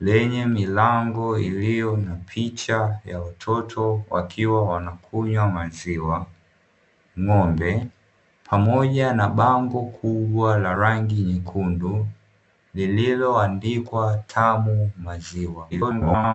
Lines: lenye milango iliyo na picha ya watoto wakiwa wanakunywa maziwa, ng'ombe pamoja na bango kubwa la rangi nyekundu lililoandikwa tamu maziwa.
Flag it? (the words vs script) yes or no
yes